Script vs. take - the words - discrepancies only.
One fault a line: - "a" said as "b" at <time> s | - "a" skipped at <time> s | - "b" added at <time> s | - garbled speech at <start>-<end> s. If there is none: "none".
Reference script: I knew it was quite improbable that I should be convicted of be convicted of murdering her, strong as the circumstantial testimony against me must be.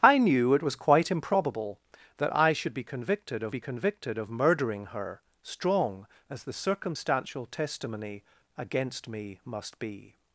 none